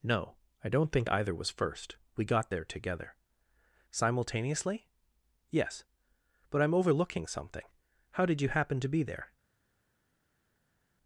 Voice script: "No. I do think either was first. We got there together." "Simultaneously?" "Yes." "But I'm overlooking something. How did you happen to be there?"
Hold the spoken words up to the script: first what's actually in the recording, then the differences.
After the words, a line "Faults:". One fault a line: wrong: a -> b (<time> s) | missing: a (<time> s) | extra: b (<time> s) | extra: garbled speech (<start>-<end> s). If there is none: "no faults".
"No. I don't think either was first. We got there together." "Simultaneously?" "Yes." "But I'm overlooking something. How did you happen to be there?"
Faults:
wrong: do -> don't (0.7 s)